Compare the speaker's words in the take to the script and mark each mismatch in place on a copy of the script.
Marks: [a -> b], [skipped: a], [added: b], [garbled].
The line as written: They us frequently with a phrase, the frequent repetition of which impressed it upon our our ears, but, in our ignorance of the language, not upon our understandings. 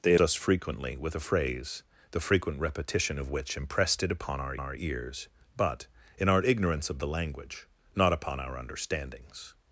They us frequently with a phrase, the frequent repetition of which impressed it upon our our ears, but, in our ignorance of the language, not upon our understandings.